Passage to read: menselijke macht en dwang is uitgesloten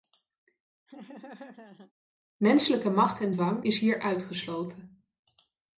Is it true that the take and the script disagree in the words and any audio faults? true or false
true